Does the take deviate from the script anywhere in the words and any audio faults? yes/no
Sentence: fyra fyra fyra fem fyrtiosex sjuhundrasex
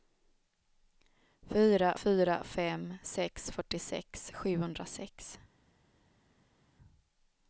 yes